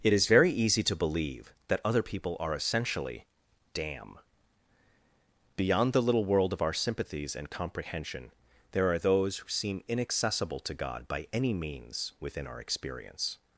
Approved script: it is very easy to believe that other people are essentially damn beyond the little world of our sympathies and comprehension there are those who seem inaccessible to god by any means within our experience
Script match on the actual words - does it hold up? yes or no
yes